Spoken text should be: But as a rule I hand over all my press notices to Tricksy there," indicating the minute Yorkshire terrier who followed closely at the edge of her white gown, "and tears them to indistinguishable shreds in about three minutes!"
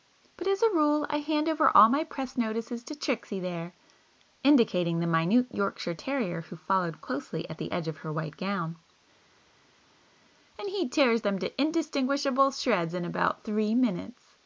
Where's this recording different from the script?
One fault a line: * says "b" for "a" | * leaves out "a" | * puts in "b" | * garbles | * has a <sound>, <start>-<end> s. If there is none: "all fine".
* puts in "he"